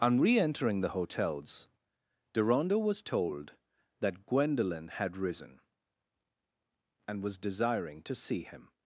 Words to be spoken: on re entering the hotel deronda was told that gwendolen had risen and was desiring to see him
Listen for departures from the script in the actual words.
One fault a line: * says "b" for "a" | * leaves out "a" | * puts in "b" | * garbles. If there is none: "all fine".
* says "hotels" for "hotel"